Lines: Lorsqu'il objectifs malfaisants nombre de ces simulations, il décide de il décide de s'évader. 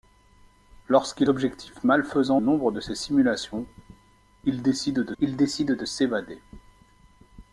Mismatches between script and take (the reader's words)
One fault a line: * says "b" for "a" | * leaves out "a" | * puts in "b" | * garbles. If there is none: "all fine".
all fine